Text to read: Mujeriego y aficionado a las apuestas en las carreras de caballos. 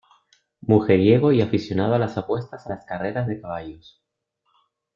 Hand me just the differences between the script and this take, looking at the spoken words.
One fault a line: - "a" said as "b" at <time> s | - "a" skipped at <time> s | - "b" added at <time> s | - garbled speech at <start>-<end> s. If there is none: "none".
none